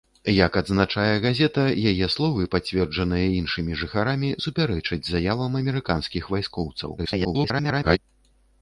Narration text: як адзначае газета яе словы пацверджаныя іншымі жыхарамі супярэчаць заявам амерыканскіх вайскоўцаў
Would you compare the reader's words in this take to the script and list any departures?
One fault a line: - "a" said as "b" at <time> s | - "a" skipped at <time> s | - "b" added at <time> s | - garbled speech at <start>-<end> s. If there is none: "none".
- garbled speech at 7.0-8.0 s